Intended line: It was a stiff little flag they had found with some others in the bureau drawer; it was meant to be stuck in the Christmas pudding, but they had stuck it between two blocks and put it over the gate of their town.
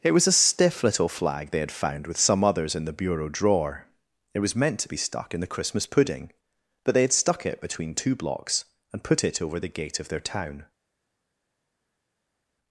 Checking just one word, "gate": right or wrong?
right